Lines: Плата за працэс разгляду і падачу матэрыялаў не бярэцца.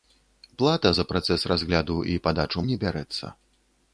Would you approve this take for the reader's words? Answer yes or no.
no